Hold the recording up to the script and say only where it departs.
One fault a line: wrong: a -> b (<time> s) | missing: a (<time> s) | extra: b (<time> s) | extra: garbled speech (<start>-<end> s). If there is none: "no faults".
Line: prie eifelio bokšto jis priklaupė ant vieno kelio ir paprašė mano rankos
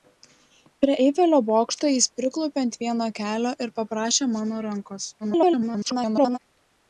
extra: garbled speech (5.2-6.4 s)